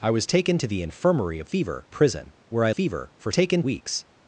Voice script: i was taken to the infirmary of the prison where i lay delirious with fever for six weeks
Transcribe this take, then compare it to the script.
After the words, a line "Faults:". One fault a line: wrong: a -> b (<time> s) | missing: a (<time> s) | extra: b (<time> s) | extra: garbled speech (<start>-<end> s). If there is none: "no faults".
i was taken to the infirmary of fever prison where i fever for taken weeks
Faults:
wrong: the -> fever (1.5 s)
missing: lay delirious with (2.7 s)
wrong: six -> taken (3.3 s)